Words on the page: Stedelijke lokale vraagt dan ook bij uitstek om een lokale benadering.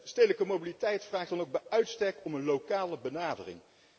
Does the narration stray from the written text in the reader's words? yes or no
yes